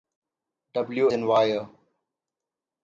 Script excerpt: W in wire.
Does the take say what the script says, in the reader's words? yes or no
yes